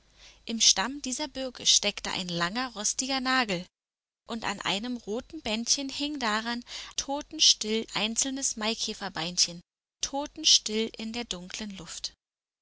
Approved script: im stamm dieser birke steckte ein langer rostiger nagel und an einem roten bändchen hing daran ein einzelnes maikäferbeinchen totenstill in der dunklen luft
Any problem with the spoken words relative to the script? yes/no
yes